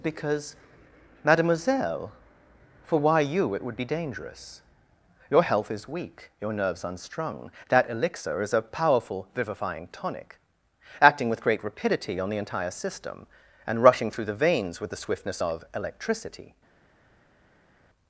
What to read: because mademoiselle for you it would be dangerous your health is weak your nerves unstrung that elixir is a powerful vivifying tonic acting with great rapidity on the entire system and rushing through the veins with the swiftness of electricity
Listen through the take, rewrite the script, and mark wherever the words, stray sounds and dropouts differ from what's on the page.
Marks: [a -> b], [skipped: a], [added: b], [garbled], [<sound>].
because mademoiselle for [added: why] you it would be dangerous your health is weak your nerves unstrung that elixir is a powerful vivifying tonic acting with great rapidity on the entire system and rushing through the veins with the swiftness of electricity